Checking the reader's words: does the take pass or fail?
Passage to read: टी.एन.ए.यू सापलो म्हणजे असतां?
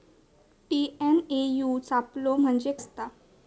pass